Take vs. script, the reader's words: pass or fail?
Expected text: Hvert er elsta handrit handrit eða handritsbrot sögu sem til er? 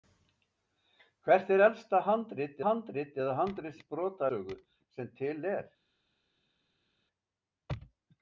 pass